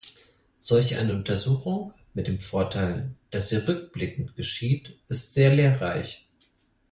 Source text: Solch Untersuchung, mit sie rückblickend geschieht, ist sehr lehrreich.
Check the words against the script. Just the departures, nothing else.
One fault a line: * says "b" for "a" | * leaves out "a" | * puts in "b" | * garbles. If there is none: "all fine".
* puts in "eine"
* puts in "dem Vorteil dass"